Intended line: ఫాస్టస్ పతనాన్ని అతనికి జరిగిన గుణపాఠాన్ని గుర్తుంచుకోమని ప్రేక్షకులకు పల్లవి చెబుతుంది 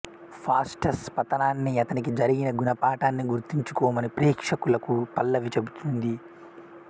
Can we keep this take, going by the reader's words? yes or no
yes